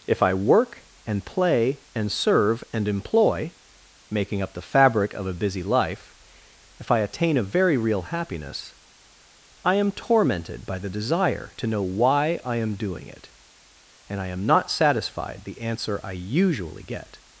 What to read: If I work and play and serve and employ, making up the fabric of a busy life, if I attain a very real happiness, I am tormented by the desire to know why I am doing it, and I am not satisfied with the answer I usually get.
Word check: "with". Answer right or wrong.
wrong